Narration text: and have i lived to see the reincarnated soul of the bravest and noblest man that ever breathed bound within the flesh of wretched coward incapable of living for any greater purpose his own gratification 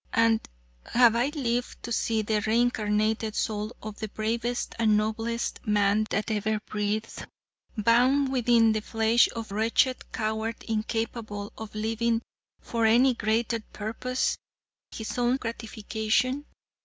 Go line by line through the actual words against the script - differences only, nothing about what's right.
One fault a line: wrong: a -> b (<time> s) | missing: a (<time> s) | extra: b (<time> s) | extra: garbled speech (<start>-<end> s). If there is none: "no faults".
no faults